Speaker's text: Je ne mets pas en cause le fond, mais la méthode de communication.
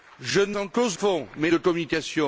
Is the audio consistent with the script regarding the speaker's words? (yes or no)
no